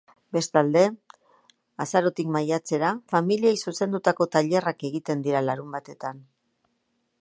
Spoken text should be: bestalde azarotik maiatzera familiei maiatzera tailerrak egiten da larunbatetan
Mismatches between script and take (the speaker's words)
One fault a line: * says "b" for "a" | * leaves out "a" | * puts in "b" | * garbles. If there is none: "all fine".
* says "zuzendutako" for "maiatzera"
* says "dira" for "da"